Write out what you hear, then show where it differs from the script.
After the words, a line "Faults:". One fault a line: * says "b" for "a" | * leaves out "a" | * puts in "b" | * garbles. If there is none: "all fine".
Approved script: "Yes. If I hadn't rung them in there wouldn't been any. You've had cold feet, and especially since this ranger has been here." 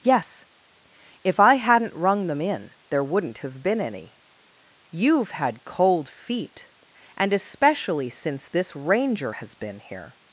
"Yes. If I hadn't rung them in there wouldn't have been any. You've had cold feet, and especially since this ranger has been here."
Faults:
* puts in "have"